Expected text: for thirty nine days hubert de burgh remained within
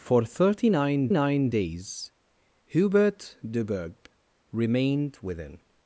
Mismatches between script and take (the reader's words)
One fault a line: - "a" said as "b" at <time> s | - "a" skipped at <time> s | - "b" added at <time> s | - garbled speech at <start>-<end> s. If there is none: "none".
- "nine" added at 1.1 s